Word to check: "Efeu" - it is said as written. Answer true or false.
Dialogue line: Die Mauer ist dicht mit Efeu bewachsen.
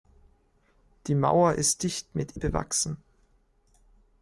false